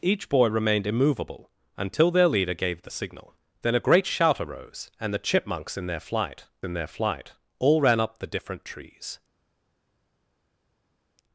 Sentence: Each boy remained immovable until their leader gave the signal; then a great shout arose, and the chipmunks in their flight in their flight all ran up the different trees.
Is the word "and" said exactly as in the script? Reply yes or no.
yes